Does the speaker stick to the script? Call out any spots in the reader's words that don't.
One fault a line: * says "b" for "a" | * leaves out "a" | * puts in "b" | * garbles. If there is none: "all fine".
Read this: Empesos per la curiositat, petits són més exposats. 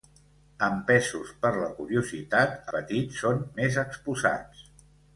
all fine